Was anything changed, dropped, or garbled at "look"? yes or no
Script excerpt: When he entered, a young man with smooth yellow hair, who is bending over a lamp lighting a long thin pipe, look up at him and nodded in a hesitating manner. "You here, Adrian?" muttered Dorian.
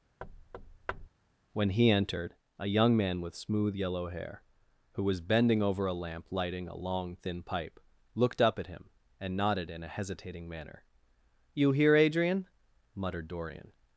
yes